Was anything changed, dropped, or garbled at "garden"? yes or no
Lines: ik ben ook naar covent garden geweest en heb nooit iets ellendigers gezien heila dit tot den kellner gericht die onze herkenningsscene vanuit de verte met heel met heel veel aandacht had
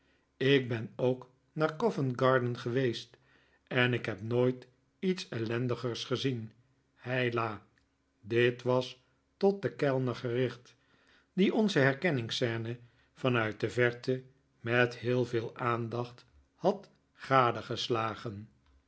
no